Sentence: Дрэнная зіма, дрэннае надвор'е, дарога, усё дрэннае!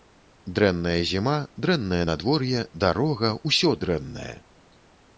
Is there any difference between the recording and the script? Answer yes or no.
no